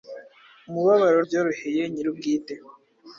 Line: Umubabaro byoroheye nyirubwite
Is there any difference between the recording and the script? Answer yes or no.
no